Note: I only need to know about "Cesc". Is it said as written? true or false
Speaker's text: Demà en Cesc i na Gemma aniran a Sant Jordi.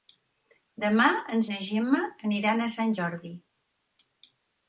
false